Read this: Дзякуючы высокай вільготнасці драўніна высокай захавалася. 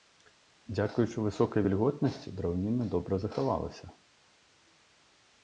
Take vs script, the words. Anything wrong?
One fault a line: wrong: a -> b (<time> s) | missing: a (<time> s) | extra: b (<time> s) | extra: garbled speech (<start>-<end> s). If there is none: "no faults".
wrong: высокай -> добра (2.9 s)